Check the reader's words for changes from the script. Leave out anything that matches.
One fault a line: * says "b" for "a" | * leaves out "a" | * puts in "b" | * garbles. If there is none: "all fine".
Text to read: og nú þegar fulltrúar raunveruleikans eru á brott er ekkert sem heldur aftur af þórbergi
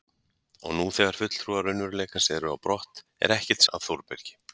* leaves out "sem heldur aftur"